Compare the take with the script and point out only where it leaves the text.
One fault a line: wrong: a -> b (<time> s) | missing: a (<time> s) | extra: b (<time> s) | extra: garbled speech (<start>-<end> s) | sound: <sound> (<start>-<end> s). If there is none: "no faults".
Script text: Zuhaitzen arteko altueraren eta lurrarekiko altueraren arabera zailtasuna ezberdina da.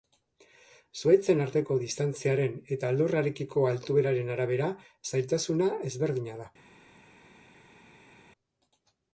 wrong: altueraren -> distantziaren (1.8 s)